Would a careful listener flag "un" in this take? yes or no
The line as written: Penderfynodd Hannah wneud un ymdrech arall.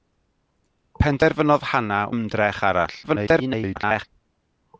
yes